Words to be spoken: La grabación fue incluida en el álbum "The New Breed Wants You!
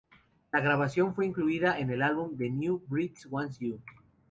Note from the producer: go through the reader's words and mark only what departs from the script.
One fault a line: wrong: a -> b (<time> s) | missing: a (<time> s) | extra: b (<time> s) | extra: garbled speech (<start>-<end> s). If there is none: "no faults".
no faults